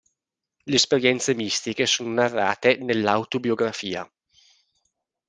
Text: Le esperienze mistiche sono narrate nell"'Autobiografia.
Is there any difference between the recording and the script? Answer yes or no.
no